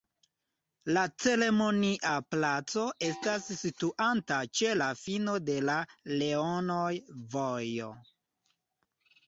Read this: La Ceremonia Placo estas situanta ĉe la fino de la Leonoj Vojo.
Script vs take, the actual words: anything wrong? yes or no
no